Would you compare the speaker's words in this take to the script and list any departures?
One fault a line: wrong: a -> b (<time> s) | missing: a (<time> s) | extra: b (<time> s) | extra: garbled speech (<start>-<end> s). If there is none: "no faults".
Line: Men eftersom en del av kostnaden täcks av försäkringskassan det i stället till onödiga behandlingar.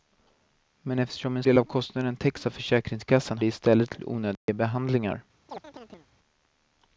no faults